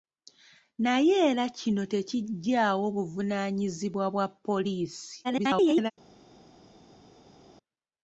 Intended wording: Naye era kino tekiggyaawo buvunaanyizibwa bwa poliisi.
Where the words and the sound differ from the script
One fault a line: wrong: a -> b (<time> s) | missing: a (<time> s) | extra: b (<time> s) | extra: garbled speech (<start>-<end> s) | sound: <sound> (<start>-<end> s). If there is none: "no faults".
extra: garbled speech (5.2-5.9 s)